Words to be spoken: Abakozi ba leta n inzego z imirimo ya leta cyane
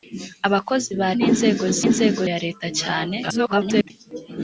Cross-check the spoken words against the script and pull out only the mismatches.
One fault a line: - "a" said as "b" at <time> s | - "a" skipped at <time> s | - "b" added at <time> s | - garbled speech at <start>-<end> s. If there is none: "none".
- "leta" skipped at 1.1 s
- "imirimo" said as "inzego" at 1.9 s
- garbled speech at 3.2-3.9 s